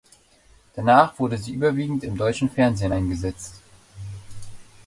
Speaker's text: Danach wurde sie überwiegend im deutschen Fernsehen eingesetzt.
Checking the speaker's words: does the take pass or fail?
pass